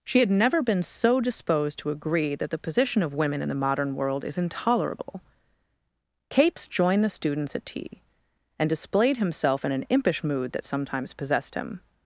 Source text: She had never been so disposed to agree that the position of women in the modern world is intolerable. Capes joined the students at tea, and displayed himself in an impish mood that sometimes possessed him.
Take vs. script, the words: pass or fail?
pass